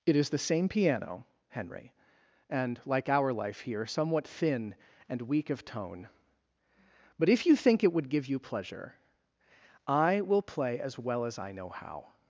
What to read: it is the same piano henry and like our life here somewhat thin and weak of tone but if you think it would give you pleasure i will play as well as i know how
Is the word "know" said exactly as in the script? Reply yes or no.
yes